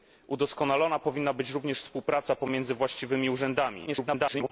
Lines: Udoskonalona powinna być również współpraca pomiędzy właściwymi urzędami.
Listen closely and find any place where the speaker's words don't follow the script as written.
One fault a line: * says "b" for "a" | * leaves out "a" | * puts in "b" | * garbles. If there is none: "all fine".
* garbles